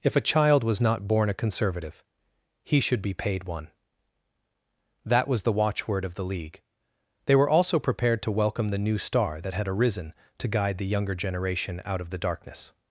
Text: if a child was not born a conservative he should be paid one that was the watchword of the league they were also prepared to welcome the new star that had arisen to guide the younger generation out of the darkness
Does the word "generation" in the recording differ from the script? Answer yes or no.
no